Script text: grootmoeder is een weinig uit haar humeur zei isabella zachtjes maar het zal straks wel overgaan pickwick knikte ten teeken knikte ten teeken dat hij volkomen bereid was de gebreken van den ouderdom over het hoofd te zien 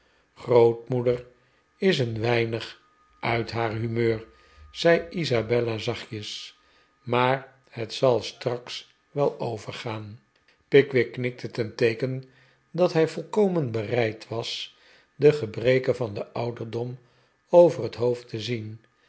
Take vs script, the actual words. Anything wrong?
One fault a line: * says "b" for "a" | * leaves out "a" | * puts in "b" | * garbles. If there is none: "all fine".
* leaves out "knikte ten teeken"